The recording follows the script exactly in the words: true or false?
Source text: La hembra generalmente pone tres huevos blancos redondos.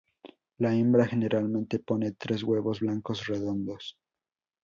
true